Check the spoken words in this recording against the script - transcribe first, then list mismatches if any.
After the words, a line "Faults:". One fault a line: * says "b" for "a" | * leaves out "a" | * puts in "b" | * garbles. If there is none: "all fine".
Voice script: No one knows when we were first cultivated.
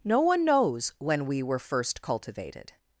No one knows when we were first cultivated.
Faults:
all fine